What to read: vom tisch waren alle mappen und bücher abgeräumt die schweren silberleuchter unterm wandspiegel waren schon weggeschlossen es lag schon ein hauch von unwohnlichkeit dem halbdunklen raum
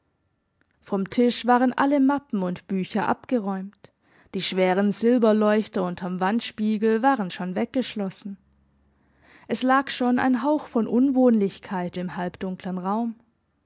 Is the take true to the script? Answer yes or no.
yes